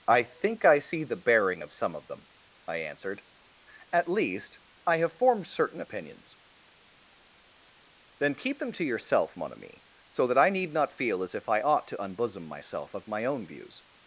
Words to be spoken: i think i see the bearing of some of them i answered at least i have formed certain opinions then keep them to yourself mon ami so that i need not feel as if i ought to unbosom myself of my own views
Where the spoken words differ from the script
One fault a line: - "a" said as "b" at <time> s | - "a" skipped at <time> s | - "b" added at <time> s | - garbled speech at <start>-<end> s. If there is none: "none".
none